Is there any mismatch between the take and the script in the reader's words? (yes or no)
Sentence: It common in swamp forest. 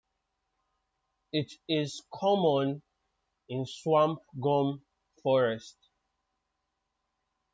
yes